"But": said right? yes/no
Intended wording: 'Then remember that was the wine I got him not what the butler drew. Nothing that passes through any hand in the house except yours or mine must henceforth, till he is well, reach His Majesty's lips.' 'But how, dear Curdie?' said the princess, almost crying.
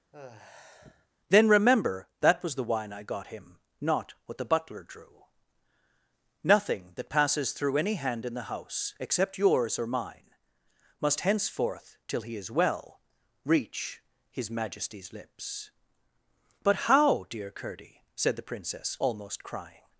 yes